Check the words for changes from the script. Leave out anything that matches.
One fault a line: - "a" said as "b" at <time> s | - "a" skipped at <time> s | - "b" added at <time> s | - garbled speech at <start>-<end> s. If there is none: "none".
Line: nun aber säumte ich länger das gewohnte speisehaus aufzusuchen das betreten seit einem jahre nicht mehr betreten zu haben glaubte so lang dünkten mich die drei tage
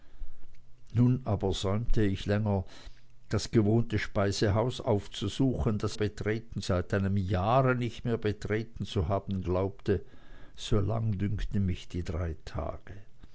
none